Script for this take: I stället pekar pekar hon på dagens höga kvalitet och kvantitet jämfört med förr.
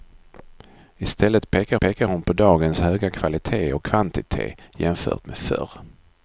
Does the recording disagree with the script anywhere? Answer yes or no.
no